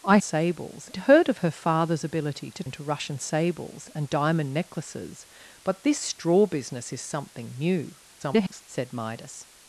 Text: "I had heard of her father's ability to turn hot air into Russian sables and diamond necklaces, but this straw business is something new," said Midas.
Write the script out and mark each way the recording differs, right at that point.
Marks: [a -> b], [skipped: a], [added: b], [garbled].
"I [had -> sables] heard of her father's ability to [skipped: turn hot air] into Russian sables and diamond necklaces, but this straw business is something new," [garbled] said Midas.